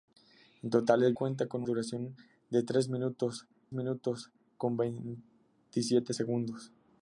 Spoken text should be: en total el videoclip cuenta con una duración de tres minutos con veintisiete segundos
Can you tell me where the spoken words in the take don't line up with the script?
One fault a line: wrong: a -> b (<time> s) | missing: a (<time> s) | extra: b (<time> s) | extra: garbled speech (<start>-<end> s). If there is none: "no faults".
missing: videoclip (1.1 s)
missing: una (1.6 s)
extra: minutos (3.7 s)